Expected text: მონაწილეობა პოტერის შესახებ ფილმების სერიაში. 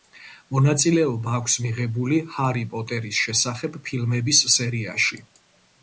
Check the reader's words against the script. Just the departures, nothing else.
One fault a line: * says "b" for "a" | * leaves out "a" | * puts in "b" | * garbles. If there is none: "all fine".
* puts in "აქვს მიღებული ჰარი"